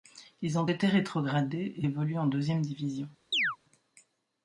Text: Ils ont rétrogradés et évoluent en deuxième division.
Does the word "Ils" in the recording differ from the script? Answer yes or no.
no